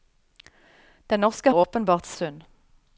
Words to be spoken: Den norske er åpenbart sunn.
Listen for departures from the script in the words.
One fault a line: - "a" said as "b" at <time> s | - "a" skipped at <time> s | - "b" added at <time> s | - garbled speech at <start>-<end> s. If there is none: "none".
none